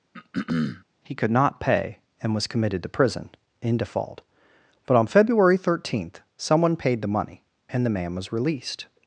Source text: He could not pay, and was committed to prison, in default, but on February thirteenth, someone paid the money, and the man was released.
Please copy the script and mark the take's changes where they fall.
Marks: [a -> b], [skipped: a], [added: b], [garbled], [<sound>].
[throat clearing] He could not pay, and was committed to prison, in default, but on February thirteenth, someone paid the money, and the man was released.